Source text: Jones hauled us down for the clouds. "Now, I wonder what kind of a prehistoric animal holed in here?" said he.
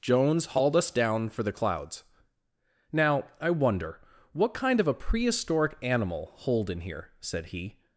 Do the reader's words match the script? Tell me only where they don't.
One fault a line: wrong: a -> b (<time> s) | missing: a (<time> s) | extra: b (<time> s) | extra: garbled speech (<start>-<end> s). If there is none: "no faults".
no faults